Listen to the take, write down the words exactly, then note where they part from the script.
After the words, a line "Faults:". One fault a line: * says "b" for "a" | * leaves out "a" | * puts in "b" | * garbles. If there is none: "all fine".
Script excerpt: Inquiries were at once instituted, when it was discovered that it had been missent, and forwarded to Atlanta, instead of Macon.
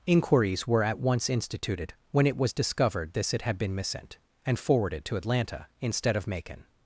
Inquiries were at once instituted, when it was discovered this it had been missent, and forwarded to Atlanta, instead of Macon.
Faults:
* says "this" for "that"